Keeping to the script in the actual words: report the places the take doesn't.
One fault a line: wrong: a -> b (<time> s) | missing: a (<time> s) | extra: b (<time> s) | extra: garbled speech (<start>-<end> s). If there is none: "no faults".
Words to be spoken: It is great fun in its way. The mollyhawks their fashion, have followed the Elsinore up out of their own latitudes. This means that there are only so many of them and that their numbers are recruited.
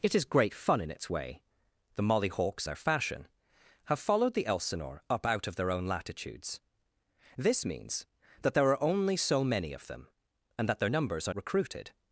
no faults